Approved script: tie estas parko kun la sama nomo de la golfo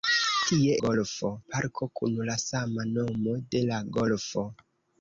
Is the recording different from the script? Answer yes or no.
yes